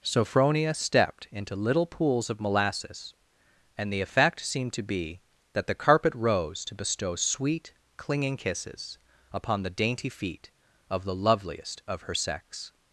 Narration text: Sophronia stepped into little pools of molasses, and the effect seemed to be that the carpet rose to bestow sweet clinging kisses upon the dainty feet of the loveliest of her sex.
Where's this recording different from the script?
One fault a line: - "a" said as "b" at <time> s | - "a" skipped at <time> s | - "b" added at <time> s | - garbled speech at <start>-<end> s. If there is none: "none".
none